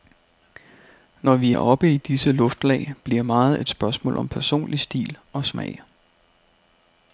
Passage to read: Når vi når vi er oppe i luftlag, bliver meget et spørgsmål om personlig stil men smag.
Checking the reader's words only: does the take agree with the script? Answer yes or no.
no